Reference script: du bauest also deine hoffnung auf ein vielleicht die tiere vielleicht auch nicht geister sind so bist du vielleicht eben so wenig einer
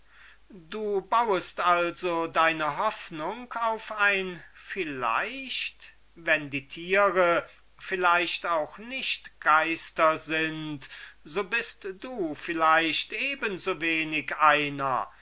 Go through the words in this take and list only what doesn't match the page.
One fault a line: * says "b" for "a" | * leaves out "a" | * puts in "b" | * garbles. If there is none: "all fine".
* puts in "wenn"